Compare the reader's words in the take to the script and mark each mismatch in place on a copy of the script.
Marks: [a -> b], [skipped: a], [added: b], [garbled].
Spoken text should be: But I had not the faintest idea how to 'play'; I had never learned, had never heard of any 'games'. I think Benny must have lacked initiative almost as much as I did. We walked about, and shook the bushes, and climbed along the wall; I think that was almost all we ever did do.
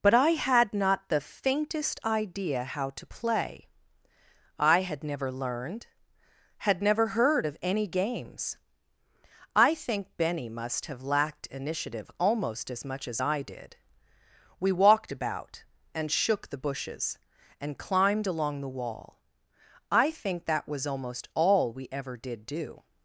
But I had not the faintest idea how to 'play'; I had never learned, had never heard of any 'games'. I think Benny must have lacked initiative almost as much as I did. We walked about, and shook the bushes, and climbed along the wall; I think that was almost all we ever did do.